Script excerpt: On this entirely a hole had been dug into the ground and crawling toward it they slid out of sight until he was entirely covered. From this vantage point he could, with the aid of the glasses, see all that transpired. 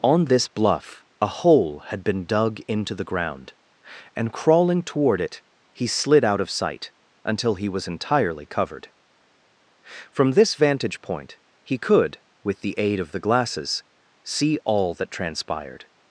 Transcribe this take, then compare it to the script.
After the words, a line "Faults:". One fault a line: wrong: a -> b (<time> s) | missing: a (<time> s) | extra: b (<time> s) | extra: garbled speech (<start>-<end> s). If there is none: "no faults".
On this bluff a hole had been dug into the ground and crawling toward it he slid out of sight until he was entirely covered. From this vantage point he could, with the aid of the glasses, see all that transpired.
Faults:
wrong: entirely -> bluff (0.5 s)
wrong: they -> he (5.7 s)